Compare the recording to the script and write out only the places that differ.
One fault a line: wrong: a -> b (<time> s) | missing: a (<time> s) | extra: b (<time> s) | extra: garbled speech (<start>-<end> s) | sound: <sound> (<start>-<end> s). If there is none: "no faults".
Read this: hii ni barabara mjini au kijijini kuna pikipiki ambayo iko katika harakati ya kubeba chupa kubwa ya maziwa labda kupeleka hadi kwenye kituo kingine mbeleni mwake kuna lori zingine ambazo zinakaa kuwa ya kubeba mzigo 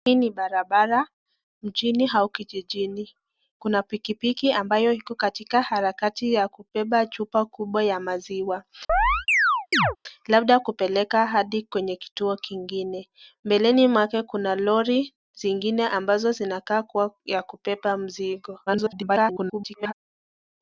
sound: chirp (8.9-10.0 s)
extra: garbled speech (18.7-19.9 s)